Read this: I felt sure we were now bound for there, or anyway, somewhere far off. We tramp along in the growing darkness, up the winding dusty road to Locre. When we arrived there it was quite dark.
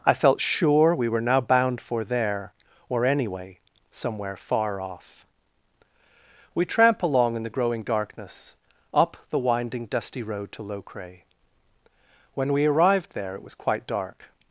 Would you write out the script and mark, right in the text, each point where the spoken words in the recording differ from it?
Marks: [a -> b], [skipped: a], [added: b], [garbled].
I felt sure we were now bound for there, or anyway, somewhere far off. We tramp along in the growing darkness, up the winding dusty road to Locre. When we arrived there it was quite dark.